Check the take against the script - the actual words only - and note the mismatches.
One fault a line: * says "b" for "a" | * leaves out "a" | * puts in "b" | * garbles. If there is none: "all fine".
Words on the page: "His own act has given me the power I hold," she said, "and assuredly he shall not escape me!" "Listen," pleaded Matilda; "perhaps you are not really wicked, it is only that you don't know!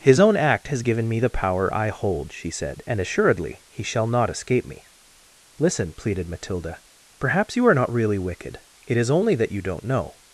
all fine